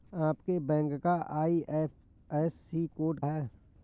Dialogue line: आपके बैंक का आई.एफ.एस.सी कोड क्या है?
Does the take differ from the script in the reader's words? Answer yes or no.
yes